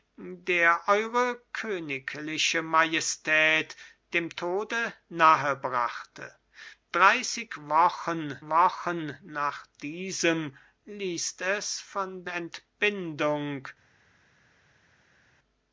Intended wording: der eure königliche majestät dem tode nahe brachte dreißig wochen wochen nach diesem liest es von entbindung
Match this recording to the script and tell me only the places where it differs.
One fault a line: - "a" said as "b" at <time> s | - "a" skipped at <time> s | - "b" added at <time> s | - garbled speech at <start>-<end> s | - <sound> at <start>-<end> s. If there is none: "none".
none